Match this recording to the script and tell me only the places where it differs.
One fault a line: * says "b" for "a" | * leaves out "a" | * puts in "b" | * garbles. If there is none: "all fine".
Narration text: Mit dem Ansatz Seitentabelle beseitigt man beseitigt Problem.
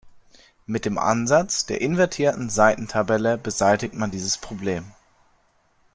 * puts in "der invertierten"
* says "dieses" for "beseitigt"